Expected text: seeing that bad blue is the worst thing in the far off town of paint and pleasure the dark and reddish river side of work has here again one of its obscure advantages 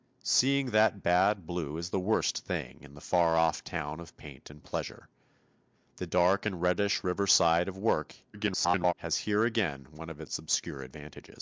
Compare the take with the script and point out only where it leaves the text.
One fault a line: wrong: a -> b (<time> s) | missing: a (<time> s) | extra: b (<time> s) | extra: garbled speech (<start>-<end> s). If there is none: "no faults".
extra: garbled speech (8.3-8.9 s)